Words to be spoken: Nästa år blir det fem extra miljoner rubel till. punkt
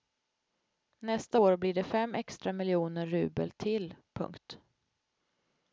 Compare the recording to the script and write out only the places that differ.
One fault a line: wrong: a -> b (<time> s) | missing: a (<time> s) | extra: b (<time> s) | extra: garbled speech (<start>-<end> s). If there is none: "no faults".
no faults